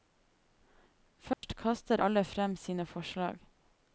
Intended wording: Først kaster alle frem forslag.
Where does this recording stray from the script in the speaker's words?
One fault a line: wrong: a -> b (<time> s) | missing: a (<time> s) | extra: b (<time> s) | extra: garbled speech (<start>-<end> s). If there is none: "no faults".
extra: sine (2.5 s)